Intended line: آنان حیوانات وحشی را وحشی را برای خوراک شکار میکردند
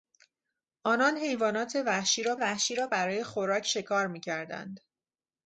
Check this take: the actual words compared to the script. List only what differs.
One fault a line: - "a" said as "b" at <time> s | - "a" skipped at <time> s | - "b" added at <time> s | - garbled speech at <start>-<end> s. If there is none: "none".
none